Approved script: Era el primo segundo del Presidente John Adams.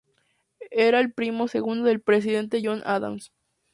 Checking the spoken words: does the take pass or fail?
pass